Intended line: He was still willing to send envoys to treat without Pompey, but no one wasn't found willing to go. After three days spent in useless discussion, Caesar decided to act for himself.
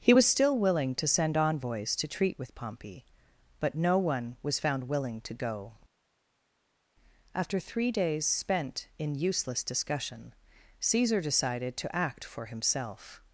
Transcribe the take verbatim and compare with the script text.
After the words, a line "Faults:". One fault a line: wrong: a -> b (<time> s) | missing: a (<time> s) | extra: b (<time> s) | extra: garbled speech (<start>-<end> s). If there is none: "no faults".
He was still willing to send envoys to treat with Pompey, but no one was found willing to go. After three days spent in useless discussion, Caesar decided to act for himself.
Faults:
wrong: without -> with (2.4 s)
wrong: wasn't -> was (4.4 s)